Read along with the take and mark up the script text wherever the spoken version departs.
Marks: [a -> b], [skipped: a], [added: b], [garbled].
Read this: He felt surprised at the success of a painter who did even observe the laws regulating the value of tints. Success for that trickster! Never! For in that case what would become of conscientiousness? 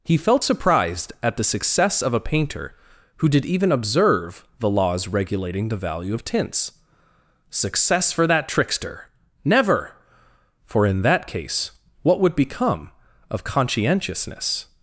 He felt surprised at the success of a painter who did even observe the laws regulating the value of tints. Success for that trickster! Never! For in that case what would become of conscientiousness?